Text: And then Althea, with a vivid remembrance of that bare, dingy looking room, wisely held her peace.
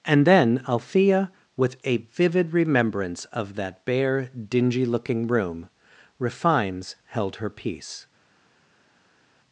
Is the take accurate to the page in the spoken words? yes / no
no